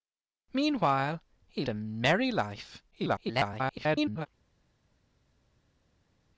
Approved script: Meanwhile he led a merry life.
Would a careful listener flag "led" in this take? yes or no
yes